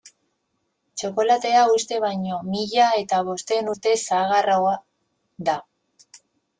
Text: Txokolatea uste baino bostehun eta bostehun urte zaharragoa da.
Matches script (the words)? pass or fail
fail